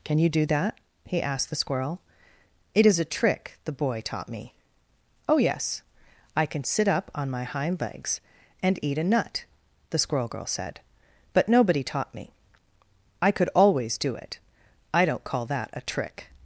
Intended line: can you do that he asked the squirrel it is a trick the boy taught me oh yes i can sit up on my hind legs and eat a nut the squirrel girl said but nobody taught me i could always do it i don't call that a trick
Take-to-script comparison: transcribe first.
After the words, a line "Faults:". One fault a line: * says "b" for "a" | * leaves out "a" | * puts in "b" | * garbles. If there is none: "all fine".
can you do that he asked the squirrel it is a trick the boy taught me oh yes i can sit up on my hind legs and eat a nut the squirrel girl said but nobody taught me i could always do it i don't call that a trick
Faults:
all fine